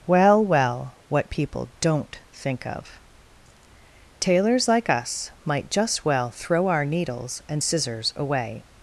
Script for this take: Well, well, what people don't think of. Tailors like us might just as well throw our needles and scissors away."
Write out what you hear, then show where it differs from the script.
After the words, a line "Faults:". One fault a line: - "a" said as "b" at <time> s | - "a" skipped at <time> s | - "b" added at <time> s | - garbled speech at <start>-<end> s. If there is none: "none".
Well, well, what people don't think of. Tailors like us might just well throw our needles and scissors away."
Faults:
- "as" skipped at 6.0 s